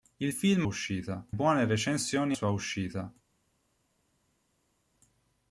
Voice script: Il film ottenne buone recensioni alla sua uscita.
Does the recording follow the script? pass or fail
fail